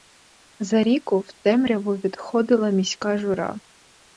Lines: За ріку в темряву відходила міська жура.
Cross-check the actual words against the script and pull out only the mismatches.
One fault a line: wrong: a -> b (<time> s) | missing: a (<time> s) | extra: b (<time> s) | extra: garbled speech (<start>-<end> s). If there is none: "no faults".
no faults